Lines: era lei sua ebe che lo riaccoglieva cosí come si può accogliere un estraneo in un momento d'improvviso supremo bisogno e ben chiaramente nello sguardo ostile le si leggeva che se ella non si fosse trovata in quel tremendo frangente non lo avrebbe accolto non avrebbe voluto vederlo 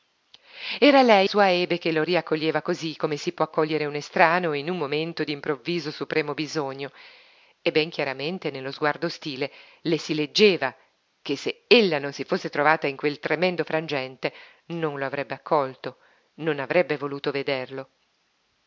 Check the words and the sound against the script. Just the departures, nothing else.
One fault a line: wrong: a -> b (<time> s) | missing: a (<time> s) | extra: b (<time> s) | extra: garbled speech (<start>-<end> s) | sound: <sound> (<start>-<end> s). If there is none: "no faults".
no faults